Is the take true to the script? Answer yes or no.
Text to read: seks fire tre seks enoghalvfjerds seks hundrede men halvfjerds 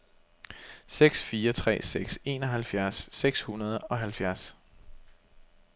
no